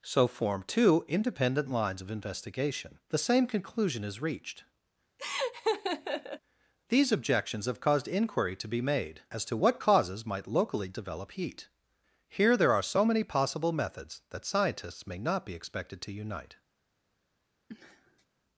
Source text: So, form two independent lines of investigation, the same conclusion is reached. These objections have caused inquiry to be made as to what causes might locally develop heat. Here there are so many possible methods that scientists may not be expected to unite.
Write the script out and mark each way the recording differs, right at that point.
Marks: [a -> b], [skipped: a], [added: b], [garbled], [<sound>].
So, form two independent lines of investigation, the same conclusion is reached. [laugh] These objections have caused inquiry to be made as to what causes might locally develop heat. Here there are so many possible methods that scientists may not be expected to unite. [sniff]